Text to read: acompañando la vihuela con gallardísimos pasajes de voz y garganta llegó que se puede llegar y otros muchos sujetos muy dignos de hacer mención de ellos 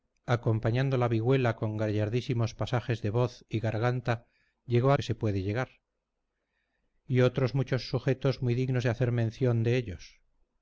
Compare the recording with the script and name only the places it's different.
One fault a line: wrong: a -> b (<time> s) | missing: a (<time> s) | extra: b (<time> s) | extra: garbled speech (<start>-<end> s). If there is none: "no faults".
no faults